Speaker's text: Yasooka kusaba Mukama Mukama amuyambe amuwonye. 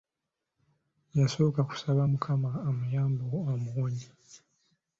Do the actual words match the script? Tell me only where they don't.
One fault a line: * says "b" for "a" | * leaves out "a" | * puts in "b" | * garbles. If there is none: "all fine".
* leaves out "Mukama"